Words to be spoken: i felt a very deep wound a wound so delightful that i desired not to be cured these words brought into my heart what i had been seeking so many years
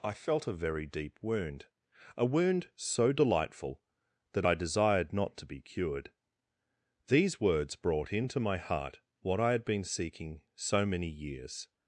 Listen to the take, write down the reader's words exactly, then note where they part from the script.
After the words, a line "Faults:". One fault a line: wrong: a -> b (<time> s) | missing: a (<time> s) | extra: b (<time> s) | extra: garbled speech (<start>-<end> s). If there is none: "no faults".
i felt a very deep wound a wound so delightful that i desired not to be cured these words brought into my heart what i had been seeking so many years
Faults:
no faults